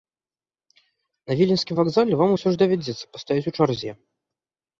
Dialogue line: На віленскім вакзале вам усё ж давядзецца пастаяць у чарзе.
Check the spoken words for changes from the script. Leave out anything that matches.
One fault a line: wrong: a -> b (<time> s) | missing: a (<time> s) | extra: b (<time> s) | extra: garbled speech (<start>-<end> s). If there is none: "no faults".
no faults